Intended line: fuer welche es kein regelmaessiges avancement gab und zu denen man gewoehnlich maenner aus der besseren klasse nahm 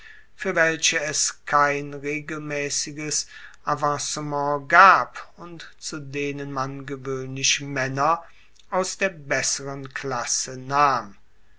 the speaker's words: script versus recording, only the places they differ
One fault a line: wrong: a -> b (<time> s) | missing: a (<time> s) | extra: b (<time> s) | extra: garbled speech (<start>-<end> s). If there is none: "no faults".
no faults